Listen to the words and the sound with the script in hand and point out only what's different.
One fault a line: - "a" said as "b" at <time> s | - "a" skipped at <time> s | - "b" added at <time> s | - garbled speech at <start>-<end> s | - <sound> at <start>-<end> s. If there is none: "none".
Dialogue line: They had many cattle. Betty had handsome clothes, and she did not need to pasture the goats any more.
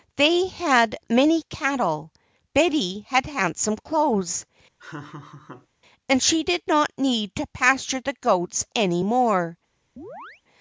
- laugh at 4.8-5.7 s
- chirp at 10.0-10.4 s